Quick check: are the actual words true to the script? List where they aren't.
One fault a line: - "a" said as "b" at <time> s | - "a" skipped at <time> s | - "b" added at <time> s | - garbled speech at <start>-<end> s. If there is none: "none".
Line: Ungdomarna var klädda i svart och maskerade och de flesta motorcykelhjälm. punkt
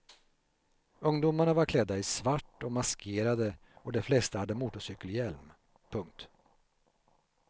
- "hade" added at 4.4 s